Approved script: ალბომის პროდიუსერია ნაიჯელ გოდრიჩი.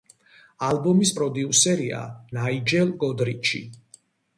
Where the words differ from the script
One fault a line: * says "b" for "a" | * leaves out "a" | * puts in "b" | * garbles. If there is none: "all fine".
all fine